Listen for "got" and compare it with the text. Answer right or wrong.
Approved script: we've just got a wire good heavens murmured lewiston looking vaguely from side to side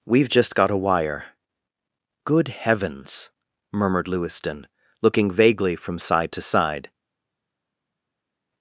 right